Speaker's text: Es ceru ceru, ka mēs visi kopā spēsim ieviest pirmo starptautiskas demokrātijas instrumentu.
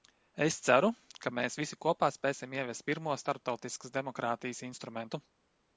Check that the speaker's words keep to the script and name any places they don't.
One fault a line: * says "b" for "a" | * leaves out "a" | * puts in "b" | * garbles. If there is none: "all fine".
* leaves out "ceru"